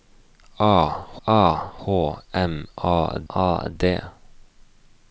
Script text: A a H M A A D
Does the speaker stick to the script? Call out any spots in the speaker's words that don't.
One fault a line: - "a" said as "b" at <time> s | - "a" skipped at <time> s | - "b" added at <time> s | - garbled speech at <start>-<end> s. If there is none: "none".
none